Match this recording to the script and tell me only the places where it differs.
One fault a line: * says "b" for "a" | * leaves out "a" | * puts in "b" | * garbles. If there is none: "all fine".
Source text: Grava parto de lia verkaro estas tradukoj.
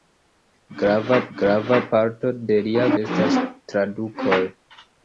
* puts in "grava"
* leaves out "verkaro"